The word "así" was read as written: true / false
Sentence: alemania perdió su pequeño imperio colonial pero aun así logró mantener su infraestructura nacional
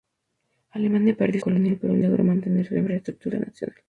false